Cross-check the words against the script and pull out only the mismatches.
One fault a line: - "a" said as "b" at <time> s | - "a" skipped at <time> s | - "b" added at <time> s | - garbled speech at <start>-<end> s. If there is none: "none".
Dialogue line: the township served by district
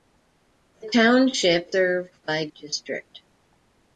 none